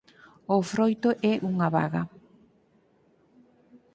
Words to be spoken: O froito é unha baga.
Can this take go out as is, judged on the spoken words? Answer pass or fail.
pass